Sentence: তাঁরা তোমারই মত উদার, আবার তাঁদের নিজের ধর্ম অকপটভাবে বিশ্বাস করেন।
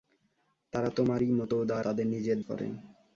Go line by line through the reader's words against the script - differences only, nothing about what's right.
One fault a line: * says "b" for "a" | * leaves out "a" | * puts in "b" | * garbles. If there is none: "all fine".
* leaves out "আবার"
* leaves out "ধর্ম অকপটভাবে বিশ্বাস"